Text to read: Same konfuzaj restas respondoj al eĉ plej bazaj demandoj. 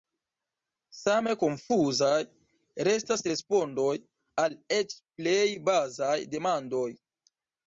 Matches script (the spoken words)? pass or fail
pass